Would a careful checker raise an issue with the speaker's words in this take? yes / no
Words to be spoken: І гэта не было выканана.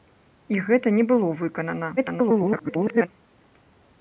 yes